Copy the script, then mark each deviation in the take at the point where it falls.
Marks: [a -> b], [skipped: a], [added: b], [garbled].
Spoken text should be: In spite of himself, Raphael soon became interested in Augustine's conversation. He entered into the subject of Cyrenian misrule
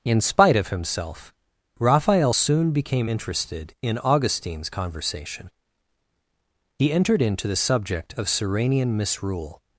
In spite of himself, Raphael soon became interested in Augustine's conversation. He entered into the subject of Cyrenian misrule